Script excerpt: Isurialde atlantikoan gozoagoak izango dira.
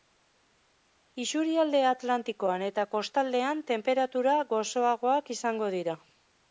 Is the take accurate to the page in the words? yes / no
no